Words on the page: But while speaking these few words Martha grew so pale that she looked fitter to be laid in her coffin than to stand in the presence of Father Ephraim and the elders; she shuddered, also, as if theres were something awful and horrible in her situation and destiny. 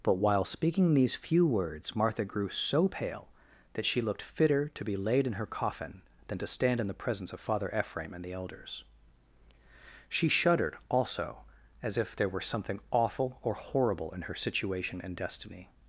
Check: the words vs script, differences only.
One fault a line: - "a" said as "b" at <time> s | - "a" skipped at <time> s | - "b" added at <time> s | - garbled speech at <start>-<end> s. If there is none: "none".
- "theres" said as "there" at 12.2 s
- "and" said as "or" at 13.4 s